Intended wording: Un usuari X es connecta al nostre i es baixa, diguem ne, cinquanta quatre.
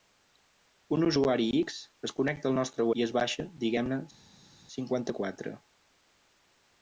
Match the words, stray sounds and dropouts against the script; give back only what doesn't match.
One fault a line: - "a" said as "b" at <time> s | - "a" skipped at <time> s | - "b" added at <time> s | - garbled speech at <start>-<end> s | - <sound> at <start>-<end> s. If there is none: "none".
none